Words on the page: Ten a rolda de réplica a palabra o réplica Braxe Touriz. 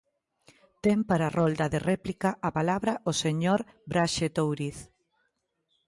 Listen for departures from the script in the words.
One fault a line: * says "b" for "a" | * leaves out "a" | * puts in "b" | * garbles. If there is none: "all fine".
* puts in "para"
* says "señor" for "réplica"